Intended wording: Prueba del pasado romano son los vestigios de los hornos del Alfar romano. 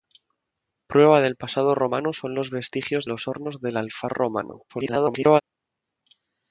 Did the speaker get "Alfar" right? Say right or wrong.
right